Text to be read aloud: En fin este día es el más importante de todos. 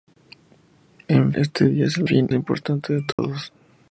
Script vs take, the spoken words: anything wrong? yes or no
yes